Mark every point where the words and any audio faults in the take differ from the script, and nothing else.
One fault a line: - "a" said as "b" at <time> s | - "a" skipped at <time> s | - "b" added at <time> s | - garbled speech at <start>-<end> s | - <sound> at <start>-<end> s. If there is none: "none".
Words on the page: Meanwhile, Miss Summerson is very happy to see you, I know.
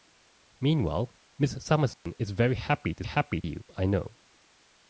- dropout at 1.9-2.1 s
- "see" said as "happy" at 3.0 s